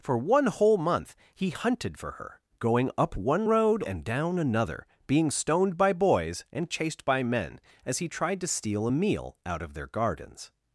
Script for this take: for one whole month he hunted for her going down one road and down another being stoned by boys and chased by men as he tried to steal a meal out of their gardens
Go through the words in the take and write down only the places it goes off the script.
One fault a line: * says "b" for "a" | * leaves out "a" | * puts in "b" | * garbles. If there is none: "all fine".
* says "up" for "down"